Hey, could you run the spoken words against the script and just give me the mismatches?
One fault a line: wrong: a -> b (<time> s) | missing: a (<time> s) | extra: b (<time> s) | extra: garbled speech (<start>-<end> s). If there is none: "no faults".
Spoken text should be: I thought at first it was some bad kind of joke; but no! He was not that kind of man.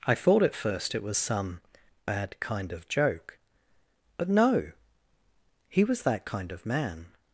missing: not (6.0 s)